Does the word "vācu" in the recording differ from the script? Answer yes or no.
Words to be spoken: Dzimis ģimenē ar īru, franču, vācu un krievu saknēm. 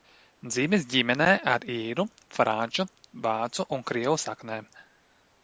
no